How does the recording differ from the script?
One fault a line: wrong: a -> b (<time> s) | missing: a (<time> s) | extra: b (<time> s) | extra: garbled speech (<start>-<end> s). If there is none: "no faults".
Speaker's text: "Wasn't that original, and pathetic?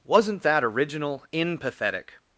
wrong: and -> in (1.3 s)